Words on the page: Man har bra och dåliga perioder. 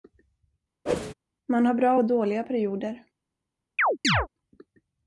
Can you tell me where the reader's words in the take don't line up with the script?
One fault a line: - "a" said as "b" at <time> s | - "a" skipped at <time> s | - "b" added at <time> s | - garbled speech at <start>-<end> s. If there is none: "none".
none